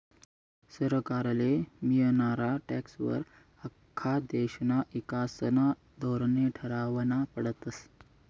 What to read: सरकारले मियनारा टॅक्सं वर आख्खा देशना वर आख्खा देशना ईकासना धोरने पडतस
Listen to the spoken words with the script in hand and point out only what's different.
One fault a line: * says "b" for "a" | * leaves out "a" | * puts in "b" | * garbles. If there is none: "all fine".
* leaves out "वर आख्खा देशना"
* puts in "ठरावना"